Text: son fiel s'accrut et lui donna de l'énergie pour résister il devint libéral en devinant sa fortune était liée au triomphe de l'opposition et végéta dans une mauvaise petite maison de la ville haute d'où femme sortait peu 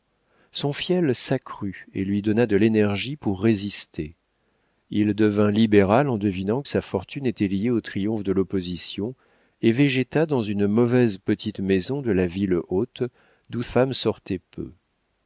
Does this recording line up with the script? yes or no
yes